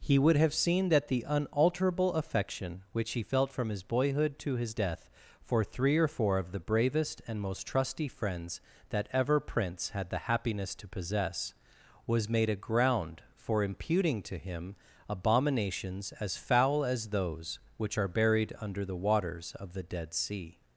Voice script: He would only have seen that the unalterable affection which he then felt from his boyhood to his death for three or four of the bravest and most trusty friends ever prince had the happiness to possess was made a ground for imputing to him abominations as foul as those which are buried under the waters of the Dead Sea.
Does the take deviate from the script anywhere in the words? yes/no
yes